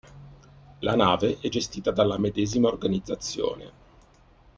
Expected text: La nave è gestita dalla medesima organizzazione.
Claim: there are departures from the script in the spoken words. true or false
false